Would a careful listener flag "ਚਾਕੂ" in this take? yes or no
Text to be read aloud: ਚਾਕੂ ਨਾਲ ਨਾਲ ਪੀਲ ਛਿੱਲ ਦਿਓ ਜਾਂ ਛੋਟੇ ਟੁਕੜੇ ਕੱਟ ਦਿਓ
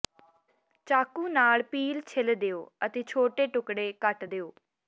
no